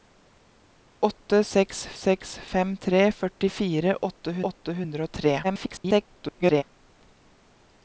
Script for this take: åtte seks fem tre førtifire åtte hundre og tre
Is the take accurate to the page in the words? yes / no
no